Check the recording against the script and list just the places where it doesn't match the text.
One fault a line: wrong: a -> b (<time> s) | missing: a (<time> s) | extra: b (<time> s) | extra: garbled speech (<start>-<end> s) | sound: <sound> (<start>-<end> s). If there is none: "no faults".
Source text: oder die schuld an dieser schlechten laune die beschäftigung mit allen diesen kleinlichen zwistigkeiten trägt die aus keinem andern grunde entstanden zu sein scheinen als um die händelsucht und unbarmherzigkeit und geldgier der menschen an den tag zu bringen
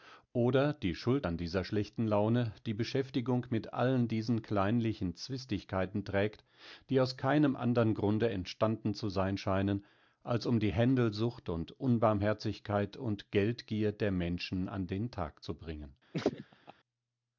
sound: laugh (16.1-16.7 s)